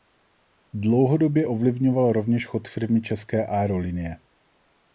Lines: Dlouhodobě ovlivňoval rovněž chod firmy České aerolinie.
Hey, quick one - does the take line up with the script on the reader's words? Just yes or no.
yes